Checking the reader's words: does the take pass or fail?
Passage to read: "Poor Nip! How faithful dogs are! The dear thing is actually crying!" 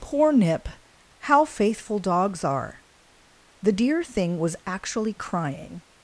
fail